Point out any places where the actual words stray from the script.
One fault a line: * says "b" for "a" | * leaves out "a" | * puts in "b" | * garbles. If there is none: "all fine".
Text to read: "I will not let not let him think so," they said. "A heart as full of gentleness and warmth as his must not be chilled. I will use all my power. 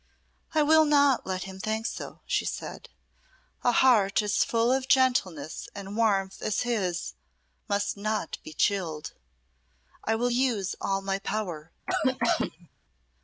* leaves out "not let"
* says "she" for "they"